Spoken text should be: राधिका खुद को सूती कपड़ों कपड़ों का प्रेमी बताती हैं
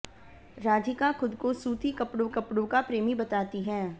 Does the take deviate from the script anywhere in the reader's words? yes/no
no